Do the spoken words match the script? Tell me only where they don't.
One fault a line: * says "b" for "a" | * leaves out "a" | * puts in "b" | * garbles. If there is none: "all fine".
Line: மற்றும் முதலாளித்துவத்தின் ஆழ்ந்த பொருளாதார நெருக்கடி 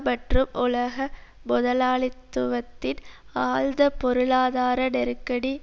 * puts in "உலக"